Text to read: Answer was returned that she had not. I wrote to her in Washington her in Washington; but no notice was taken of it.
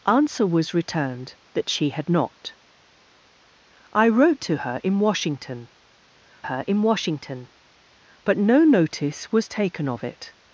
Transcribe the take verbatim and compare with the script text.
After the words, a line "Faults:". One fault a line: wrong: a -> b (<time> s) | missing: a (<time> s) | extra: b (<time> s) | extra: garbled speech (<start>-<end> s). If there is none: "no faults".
Answer was returned that she had not. I wrote to her in Washington her in Washington; but no notice was taken of it.
Faults:
no faults